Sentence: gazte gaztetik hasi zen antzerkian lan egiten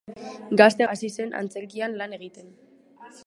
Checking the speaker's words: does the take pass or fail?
fail